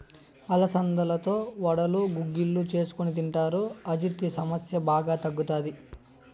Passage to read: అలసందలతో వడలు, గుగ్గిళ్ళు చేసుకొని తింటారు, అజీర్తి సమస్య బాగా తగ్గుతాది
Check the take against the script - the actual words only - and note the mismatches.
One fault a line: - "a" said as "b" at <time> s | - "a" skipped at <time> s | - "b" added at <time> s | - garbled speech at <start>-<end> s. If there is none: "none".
none